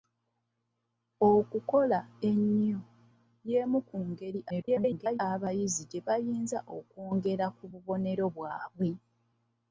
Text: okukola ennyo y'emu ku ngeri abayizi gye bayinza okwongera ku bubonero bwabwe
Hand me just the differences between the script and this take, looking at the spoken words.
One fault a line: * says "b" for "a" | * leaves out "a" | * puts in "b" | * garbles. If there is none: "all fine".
* garbles